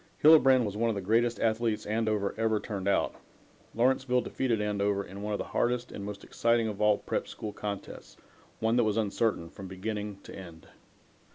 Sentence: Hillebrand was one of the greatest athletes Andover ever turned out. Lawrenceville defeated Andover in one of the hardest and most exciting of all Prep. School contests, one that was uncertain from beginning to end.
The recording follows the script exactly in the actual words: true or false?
true